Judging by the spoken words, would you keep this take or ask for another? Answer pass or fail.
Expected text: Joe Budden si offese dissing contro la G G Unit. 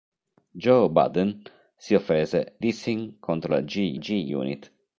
pass